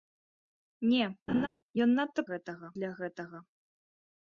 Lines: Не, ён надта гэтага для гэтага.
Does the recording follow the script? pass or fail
pass